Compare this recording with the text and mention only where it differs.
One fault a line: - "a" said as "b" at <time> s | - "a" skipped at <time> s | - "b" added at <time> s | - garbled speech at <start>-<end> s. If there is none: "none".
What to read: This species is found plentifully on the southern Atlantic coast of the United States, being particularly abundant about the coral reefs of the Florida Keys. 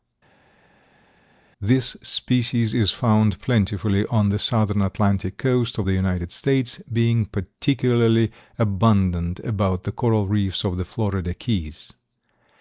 none